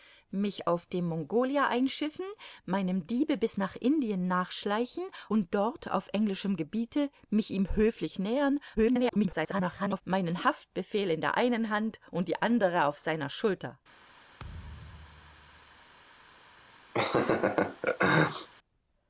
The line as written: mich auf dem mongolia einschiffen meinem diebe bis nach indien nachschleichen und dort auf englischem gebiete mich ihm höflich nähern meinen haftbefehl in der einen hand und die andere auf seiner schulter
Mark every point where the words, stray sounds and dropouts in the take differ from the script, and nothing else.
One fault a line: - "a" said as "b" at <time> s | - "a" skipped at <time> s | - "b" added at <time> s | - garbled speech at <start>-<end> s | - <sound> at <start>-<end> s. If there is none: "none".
- garbled speech at 8.8-10.0 s
- thud at 14.4-15.8 s
- laugh at 16.9-18.5 s